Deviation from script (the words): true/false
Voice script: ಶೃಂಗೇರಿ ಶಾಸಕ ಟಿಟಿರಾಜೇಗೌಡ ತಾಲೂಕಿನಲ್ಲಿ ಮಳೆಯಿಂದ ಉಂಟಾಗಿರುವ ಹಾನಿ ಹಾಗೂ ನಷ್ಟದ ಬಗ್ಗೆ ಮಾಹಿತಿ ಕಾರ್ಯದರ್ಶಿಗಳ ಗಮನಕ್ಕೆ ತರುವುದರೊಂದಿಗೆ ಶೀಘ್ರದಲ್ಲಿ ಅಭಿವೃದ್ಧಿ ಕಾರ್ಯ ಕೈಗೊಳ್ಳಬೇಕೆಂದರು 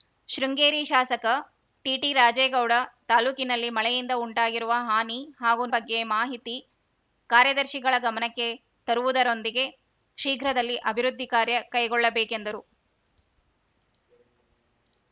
true